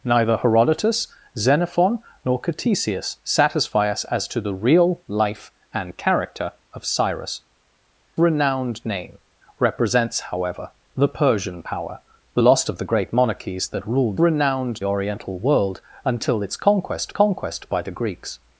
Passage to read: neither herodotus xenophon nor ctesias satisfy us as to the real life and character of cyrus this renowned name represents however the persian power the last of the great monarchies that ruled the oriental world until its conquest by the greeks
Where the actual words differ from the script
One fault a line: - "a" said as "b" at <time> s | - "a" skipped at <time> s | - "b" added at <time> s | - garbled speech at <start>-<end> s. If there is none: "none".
- "this" skipped at 7.4 s
- "the" said as "renowned" at 14.2 s
- "conquest" added at 17.1 s